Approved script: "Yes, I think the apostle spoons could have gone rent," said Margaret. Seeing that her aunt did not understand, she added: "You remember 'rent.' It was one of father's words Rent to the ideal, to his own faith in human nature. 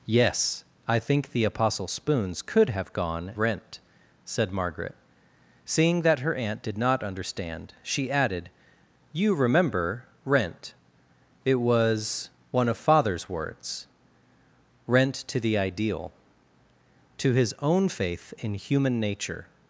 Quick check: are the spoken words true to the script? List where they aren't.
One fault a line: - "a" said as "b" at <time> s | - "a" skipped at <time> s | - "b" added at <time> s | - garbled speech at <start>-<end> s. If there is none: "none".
none